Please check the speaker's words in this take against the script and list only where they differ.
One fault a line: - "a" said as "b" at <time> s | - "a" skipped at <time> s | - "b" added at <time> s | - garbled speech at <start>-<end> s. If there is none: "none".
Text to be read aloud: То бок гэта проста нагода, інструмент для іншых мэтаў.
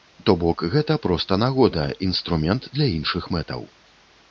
none